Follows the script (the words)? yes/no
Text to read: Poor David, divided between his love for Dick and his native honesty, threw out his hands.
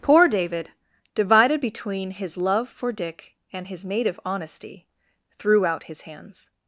yes